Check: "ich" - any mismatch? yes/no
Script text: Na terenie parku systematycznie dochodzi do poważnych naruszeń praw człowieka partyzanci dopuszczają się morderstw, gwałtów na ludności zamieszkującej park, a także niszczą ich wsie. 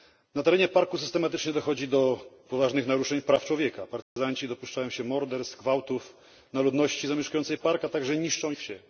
yes